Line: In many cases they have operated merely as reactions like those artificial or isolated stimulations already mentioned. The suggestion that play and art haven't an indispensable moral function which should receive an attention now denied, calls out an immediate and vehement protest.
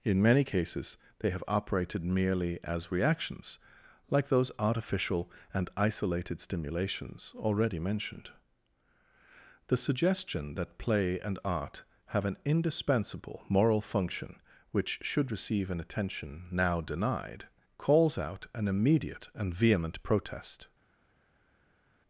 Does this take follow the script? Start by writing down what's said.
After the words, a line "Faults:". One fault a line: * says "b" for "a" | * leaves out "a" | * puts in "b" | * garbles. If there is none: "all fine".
In many cases they have operated merely as reactions like those artificial and isolated stimulations already mentioned. The suggestion that play and art have an indispensable moral function which should receive an attention now denied, calls out an immediate and vehement protest.
Faults:
* says "and" for "or"
* says "have" for "haven't"